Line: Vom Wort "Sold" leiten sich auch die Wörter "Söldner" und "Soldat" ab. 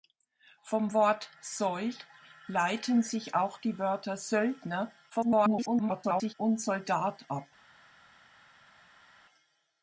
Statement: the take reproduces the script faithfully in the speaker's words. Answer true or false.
false